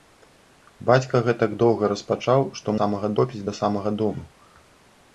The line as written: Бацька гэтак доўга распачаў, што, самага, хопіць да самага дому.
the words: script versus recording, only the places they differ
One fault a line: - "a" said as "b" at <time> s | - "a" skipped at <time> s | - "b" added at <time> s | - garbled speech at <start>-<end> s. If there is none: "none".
none